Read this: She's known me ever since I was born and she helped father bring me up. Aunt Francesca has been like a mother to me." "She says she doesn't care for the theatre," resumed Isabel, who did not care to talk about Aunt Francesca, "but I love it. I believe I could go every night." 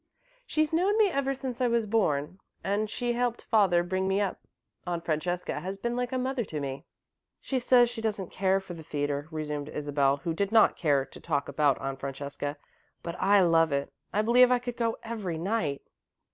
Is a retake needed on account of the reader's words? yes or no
no